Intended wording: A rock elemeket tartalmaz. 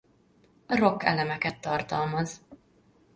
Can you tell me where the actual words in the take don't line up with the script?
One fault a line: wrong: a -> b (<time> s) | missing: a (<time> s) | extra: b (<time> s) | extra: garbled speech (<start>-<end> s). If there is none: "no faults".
no faults